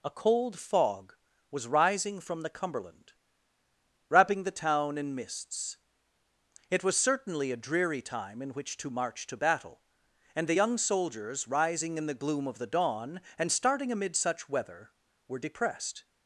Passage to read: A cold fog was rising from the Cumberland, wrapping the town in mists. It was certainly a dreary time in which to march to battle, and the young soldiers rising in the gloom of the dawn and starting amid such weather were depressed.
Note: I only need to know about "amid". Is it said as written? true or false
true